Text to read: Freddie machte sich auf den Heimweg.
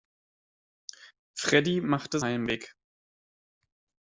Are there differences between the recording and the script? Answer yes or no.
yes